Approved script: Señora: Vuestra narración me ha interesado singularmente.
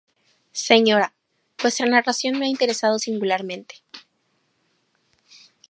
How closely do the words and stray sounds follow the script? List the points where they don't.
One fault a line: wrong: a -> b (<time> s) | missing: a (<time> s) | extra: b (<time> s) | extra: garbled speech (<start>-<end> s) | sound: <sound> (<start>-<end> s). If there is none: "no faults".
no faults